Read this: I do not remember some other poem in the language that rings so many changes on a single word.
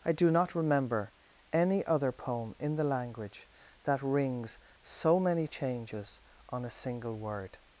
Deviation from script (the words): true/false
true